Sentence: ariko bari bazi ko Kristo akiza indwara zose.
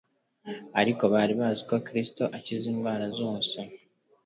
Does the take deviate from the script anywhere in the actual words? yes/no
no